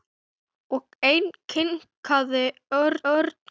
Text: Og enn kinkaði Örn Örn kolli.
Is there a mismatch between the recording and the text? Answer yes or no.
no